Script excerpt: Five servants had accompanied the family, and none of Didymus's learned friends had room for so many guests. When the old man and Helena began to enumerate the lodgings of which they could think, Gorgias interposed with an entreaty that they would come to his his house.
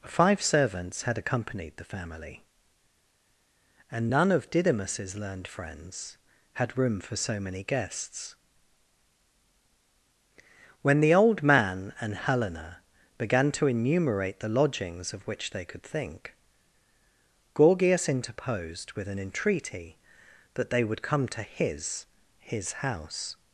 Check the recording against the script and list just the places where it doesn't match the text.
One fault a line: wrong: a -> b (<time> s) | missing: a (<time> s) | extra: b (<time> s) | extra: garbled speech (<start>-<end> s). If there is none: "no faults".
no faults